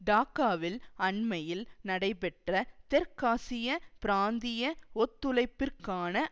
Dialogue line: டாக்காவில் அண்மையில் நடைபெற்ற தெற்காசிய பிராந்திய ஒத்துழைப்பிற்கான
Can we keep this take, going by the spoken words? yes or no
yes